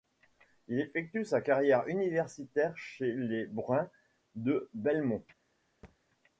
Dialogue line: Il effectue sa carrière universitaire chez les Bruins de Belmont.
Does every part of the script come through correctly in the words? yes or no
yes